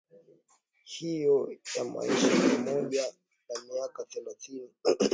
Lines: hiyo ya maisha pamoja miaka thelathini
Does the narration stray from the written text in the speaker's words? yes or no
yes